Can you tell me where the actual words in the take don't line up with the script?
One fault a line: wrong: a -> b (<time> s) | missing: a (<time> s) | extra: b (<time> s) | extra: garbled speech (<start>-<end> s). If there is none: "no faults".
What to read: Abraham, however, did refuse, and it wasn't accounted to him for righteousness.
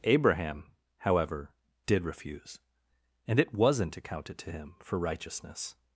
no faults